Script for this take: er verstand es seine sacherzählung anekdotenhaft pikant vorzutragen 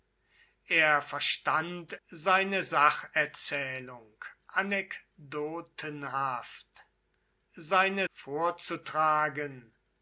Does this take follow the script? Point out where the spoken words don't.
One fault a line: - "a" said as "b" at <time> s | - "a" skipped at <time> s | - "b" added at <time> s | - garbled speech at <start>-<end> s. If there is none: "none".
- "es" skipped at 1.9 s
- "pikant" said as "seine" at 7.5 s